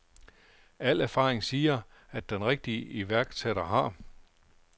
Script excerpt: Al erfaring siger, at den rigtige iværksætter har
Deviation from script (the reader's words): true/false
false